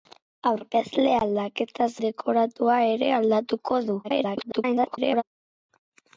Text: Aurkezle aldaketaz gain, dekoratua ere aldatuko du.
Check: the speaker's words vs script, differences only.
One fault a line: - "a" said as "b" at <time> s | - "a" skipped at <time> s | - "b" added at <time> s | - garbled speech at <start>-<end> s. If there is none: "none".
- "gain" skipped at 1.9 s
- garbled speech at 4.0-5.2 s